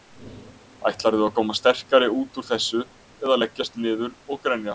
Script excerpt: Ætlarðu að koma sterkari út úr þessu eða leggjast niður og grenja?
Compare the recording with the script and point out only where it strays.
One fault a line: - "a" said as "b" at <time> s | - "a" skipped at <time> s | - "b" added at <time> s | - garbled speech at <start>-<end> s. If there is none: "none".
none